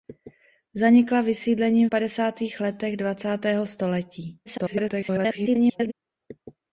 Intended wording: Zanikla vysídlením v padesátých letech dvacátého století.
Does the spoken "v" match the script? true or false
false